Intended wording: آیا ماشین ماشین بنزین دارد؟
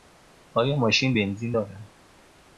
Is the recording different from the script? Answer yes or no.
yes